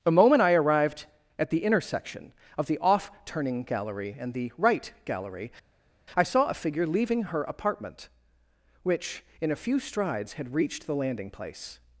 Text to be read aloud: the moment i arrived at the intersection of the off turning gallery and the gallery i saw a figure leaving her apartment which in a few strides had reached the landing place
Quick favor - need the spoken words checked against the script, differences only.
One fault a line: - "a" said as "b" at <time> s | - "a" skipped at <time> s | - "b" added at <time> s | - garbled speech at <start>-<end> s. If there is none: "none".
- "right" added at 4.6 s